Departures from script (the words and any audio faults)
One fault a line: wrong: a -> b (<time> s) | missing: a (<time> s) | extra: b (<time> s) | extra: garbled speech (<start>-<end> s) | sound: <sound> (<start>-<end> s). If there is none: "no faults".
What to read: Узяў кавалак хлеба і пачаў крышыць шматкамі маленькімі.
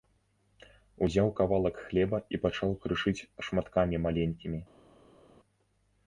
no faults